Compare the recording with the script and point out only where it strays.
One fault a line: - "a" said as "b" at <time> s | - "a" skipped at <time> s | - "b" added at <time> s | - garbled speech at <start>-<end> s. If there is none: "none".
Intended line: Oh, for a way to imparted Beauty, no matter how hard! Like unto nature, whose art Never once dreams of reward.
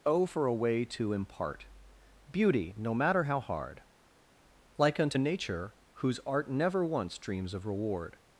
- "imparted" said as "impart" at 1.1 s